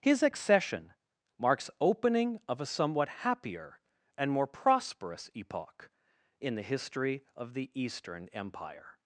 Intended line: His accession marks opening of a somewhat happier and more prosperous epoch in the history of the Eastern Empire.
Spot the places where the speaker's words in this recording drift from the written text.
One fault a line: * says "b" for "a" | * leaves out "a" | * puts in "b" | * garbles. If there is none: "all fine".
all fine